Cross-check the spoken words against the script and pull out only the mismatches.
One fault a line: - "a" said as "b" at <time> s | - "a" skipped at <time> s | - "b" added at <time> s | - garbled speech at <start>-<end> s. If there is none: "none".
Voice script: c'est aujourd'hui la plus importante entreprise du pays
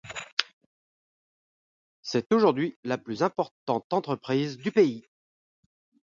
none